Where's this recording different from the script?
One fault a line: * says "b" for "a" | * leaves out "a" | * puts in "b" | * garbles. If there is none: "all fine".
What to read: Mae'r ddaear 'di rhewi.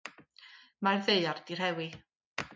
all fine